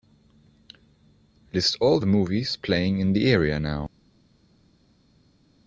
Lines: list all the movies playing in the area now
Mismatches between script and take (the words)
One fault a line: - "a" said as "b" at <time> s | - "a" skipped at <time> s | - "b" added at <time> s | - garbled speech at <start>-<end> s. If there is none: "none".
none